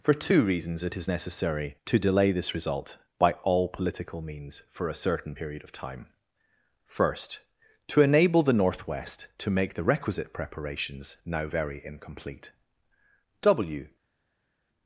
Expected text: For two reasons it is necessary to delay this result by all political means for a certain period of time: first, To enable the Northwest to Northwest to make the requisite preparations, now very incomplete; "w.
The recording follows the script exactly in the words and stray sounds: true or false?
false